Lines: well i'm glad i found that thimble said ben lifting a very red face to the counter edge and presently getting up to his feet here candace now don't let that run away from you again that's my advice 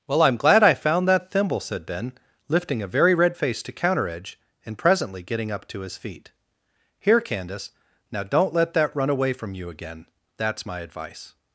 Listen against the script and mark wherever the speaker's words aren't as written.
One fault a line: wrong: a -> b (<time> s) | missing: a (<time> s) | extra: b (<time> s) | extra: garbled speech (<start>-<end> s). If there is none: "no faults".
missing: the (3.7 s)